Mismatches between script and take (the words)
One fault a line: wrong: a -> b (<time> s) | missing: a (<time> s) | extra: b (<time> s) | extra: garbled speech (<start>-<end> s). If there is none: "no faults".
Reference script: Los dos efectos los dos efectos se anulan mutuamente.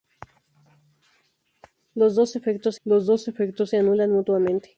no faults